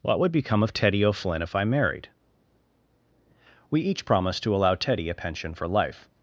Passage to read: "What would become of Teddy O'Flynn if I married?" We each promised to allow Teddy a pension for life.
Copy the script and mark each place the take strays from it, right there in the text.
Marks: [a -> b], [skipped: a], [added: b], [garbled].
"What would become of Teddy O'Flynn if I married?" We each promised to allow Teddy a pension for life.